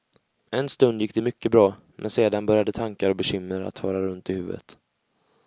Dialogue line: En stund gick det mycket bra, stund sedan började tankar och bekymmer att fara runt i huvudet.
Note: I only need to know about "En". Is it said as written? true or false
true